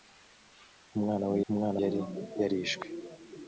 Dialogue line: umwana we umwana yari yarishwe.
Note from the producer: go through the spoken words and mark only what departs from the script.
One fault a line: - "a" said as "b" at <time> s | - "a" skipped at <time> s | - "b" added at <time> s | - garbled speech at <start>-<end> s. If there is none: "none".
none